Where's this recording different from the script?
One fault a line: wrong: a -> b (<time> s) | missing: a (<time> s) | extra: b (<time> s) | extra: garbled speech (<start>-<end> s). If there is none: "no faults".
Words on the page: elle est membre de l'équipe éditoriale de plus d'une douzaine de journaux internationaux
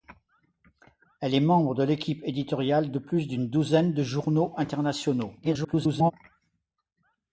extra: garbled speech (5.4-6.1 s)